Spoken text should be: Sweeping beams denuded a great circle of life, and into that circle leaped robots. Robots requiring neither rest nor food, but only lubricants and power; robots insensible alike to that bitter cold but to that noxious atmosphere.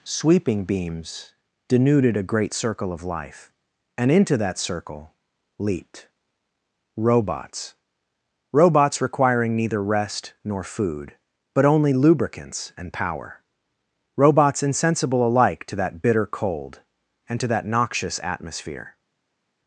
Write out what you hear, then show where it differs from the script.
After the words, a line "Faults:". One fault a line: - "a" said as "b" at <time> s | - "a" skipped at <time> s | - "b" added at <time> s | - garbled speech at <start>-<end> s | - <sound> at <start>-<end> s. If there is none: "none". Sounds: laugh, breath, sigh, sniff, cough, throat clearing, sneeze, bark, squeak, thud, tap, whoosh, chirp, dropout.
Sweeping beams denuded a great circle of life, and into that circle leaped robots. Robots requiring neither rest nor food, but only lubricants and power; robots insensible alike to that bitter cold and to that noxious atmosphere.
Faults:
- "but" said as "and" at 17.3 s